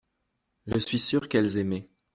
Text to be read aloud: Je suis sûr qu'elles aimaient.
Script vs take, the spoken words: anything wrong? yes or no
no